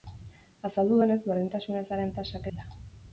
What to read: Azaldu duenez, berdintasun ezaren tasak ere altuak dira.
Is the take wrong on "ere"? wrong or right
wrong